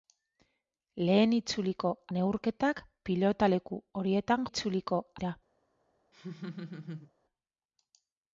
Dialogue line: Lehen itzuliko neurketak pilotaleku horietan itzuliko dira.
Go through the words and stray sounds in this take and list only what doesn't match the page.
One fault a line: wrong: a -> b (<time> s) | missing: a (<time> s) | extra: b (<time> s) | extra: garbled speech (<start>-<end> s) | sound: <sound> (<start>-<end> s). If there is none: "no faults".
sound: laugh (6.1-7.1 s)